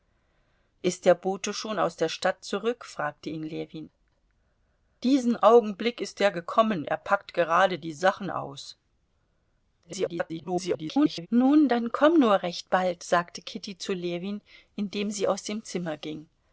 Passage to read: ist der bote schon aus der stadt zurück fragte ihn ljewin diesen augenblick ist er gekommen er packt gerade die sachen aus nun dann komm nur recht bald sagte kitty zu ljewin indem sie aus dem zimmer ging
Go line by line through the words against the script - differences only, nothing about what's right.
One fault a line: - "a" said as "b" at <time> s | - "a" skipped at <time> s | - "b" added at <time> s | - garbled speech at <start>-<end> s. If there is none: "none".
- garbled speech at 9.8-11.3 s